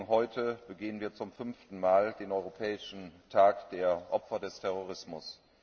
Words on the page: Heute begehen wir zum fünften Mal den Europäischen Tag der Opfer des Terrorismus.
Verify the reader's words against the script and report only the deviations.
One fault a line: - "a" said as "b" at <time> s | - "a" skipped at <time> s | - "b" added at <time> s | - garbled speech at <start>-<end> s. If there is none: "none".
none